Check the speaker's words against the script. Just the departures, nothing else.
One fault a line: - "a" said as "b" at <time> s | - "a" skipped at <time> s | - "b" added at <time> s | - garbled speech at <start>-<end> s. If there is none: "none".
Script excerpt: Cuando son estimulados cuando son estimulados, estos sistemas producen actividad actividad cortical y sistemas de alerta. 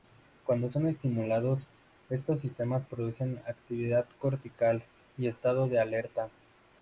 - "cuando son estimulados" skipped at 1.7 s
- "actividad" skipped at 4.1 s
- "sistemas" said as "estado" at 5.3 s